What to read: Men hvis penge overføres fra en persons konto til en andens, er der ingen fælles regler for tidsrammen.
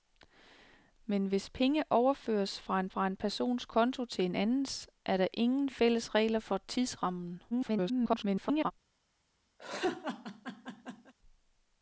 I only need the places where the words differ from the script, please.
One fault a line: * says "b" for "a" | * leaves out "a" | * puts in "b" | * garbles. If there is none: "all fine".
* puts in "fra en"
* garbles